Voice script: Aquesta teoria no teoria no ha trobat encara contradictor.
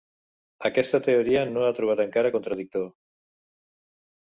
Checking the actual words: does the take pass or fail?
fail